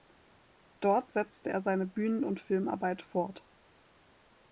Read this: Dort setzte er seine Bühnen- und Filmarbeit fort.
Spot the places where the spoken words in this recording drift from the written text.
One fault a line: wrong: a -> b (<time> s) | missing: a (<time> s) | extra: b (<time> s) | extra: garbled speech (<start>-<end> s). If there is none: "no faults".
no faults